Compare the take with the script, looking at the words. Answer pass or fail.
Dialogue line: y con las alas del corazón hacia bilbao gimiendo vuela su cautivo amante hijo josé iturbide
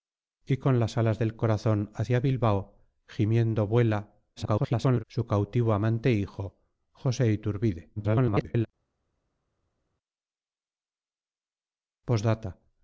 fail